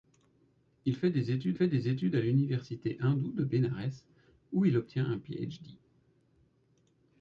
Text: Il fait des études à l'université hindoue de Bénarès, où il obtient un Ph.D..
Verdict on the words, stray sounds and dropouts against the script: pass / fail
fail